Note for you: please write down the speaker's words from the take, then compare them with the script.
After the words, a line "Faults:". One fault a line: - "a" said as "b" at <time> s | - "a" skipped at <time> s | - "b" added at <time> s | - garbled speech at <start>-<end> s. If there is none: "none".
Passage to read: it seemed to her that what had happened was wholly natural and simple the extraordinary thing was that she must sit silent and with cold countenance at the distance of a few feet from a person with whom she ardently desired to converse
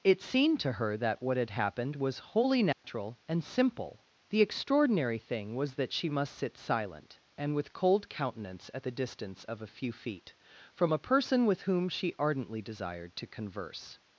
it seemed to her that what had happened was wholly natural and simple the extraordinary thing was that she must sit silent and with cold countenance at the distance of a few feet from a person with whom she ardently desired to converse
Faults:
none